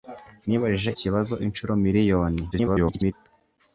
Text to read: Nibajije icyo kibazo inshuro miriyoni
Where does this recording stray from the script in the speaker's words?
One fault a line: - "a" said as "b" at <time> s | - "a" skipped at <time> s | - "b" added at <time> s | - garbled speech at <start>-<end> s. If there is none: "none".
- "icyo" skipped at 0.9 s
- garbled speech at 2.5-3.1 s